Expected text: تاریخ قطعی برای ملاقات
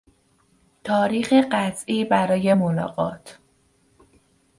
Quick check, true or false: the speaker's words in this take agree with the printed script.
true